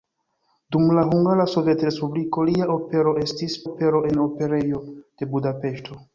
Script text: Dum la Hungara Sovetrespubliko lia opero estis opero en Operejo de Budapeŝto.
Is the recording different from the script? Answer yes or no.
no